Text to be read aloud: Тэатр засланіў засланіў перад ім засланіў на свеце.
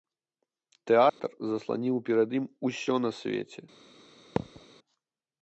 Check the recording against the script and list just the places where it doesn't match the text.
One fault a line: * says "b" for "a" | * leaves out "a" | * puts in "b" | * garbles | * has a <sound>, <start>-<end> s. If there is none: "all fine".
* has a dropout, 1.1-1.2 s
* leaves out "засланіў"
* says "усё" for "засланіў"
* has a thud, 4.4-4.6 s